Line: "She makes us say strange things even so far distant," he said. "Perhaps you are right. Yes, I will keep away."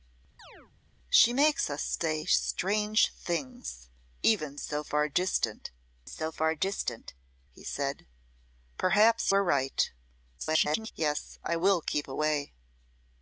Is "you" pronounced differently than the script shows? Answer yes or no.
yes